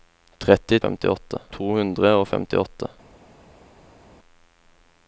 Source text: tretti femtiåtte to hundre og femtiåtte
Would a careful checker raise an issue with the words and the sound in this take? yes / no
no